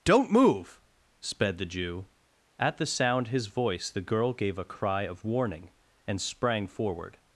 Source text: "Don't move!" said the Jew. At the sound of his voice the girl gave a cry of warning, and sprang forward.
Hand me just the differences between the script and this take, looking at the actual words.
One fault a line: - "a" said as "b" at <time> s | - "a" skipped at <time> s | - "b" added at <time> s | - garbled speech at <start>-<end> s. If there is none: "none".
- "said" said as "sped" at 1.2 s
- "of" skipped at 3.3 s